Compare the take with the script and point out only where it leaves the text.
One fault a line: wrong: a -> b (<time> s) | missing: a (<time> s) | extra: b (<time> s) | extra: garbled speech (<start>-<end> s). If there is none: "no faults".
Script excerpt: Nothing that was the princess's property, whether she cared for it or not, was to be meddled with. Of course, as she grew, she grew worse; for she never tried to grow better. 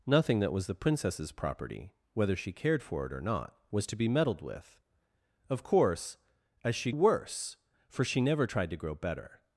missing: grew she grew (6.9 s)